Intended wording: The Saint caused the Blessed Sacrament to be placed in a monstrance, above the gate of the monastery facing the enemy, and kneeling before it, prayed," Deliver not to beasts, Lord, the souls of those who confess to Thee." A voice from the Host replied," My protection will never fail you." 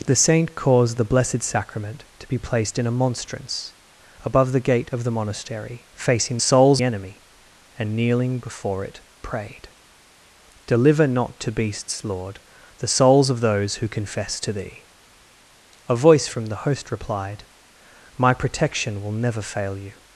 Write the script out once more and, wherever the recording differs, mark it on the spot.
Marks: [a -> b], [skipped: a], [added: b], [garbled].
The Saint caused the Blessed Sacrament to be placed in a monstrance, above the gate of the monastery facing [the -> souls] enemy, and kneeling before it, prayed," Deliver not to beasts, Lord, the souls of those who confess to Thee." A voice from the Host replied," My protection will never fail you."